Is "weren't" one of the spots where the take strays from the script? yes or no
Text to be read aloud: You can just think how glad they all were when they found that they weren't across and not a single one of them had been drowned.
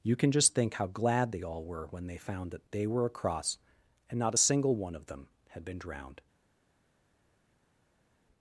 yes